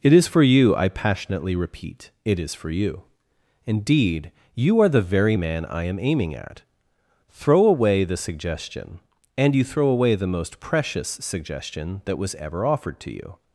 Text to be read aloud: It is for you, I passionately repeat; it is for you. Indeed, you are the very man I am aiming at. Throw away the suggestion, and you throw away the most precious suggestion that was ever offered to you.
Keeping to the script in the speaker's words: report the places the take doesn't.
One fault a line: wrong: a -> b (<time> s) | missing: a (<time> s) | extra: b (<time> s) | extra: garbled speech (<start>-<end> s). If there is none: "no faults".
no faults